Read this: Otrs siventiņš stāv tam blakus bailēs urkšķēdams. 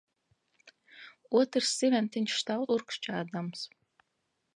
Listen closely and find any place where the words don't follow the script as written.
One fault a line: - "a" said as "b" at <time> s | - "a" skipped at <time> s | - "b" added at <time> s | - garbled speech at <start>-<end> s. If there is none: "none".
- "tam blakus bailēs" skipped at 2.7 s